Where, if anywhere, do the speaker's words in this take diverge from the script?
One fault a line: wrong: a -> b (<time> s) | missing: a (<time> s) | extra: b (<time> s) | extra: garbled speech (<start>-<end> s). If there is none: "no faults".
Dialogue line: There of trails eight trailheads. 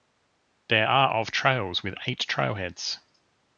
extra: are (0.8 s)
extra: with (1.8 s)